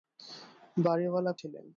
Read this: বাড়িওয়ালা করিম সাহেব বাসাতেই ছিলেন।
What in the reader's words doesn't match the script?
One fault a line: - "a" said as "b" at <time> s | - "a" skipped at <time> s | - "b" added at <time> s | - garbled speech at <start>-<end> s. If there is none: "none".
- "করিম সাহেব বাসাতেই" skipped at 1.3 s